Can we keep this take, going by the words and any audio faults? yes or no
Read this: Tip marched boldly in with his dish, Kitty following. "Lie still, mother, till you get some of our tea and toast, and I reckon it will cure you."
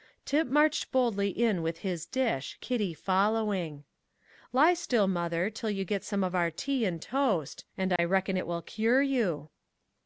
no